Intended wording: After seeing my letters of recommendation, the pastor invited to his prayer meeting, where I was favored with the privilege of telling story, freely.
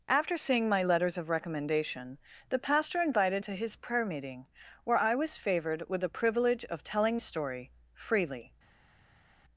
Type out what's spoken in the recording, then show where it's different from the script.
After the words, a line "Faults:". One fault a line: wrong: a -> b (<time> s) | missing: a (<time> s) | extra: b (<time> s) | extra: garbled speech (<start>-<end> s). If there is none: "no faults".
After seeing my letters of recommendation, the pastor invited to his prayer meeting, where I was favored with the privilege of telling story, freely.
Faults:
no faults